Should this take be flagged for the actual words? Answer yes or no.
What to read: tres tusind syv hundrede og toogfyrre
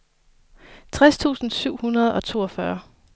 no